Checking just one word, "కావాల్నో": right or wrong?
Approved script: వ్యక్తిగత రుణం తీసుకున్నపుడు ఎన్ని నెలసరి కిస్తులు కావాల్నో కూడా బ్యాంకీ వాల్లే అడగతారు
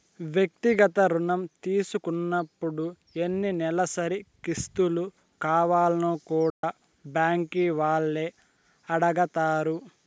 right